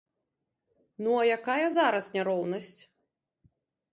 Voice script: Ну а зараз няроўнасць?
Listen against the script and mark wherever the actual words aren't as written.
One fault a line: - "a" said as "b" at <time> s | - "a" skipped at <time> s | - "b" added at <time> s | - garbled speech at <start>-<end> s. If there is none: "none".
- "якая" added at 1.4 s